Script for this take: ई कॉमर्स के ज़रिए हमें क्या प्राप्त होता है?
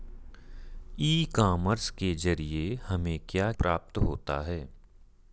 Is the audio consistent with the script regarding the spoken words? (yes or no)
yes